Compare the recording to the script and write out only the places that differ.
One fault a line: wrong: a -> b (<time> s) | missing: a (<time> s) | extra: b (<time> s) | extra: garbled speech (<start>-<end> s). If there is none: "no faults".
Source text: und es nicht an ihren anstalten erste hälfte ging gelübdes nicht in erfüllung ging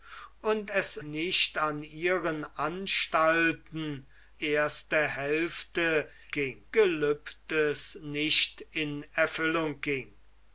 no faults